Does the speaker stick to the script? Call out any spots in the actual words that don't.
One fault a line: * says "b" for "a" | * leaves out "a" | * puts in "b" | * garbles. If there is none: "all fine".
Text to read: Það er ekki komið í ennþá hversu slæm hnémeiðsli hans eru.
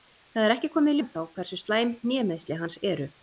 all fine